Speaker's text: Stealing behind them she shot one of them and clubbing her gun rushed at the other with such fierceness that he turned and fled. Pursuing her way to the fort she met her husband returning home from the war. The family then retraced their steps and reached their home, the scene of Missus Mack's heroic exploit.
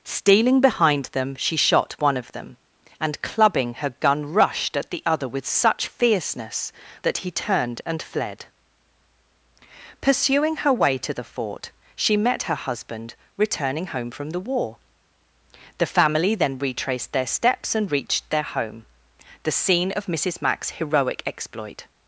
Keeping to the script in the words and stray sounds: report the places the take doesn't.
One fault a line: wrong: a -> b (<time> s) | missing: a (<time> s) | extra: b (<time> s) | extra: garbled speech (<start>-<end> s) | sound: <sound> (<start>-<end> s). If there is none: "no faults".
no faults